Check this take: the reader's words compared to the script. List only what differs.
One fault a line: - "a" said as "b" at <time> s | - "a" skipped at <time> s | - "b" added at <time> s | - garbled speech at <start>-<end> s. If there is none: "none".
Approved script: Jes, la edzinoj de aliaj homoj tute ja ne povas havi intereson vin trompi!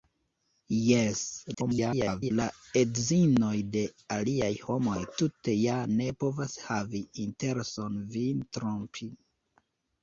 - garbled speech at 1.5-2.3 s